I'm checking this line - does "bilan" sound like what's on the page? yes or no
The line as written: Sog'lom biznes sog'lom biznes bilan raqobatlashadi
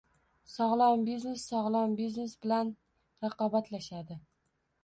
yes